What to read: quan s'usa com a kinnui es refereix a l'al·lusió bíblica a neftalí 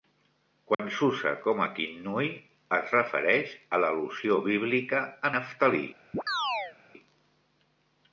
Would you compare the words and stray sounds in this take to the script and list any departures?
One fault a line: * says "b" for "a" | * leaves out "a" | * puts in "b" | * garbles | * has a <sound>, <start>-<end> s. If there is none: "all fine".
* has a dropout, 0.7-0.8 s
* has a chirp, 6.1-6.8 s